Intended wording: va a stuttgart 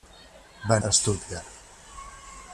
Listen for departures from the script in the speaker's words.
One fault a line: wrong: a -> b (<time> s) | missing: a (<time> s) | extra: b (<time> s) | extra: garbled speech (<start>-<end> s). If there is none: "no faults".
no faults